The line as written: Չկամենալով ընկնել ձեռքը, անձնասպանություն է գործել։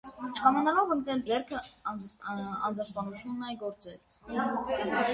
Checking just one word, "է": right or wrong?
right